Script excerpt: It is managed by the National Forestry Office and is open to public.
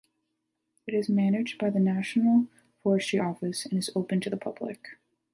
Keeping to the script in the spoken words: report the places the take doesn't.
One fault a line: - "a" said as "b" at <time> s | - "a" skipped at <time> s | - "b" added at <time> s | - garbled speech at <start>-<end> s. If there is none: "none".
- "the" added at 4.3 s